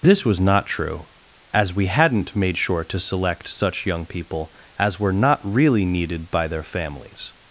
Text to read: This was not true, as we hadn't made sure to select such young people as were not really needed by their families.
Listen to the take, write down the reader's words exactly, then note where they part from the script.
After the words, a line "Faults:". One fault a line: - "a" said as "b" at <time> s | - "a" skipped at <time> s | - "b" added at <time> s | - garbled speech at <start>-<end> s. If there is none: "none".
This was not true, as we hadn't made sure to select such young people as were not really needed by their families.
Faults:
none